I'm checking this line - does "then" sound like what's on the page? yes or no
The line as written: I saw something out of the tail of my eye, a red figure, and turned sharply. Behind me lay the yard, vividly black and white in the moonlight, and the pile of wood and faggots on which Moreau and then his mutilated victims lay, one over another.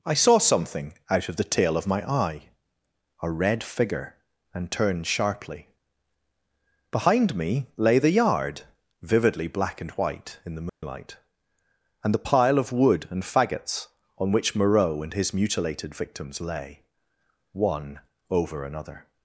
no